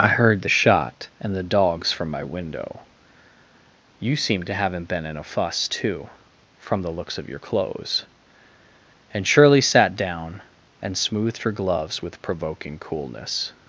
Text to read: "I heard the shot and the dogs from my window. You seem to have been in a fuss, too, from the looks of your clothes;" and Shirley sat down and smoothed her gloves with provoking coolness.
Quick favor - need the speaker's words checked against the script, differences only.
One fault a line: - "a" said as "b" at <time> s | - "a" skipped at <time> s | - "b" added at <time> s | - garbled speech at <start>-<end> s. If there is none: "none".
- "have" said as "haven't" at 4.5 s